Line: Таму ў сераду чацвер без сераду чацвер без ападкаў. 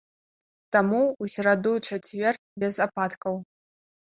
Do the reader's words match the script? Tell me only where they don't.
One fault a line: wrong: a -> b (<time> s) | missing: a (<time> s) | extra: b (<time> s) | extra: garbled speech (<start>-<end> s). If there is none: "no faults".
missing: сераду чацвер без (2.7 s)